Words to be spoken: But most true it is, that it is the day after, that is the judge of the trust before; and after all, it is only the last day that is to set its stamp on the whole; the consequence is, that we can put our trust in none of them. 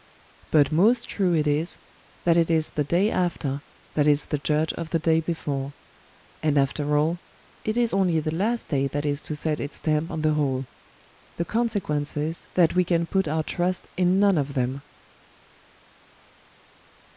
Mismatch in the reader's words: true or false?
true